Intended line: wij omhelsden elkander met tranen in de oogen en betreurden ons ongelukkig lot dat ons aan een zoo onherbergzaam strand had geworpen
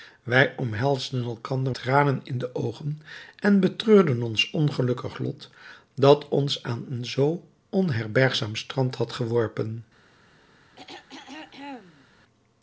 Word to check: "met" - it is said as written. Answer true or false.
false